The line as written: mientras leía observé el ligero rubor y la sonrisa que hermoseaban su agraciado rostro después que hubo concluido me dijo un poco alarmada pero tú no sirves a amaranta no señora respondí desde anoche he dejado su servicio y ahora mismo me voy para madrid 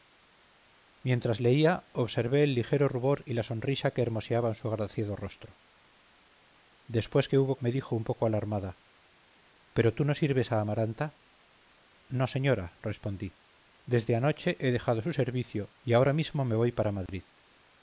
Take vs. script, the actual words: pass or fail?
fail